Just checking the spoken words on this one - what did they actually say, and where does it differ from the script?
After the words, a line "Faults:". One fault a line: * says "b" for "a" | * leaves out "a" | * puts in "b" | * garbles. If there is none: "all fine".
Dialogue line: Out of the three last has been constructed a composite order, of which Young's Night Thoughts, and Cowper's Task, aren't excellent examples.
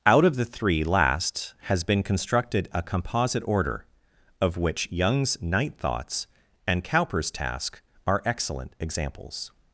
Out of the three last has been constructed a composite order, of which Young's Night Thoughts, and Cowper's Task, are excellent examples.
Faults:
* says "are" for "aren't"